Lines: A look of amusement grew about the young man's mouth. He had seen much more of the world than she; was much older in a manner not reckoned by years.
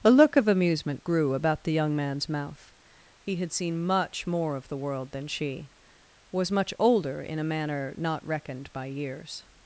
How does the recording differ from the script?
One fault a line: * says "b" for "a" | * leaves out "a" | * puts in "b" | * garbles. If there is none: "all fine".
all fine